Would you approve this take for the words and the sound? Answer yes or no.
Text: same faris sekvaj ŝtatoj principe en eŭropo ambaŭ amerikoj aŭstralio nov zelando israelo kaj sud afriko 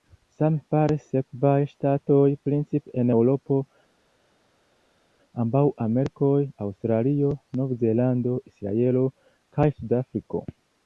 yes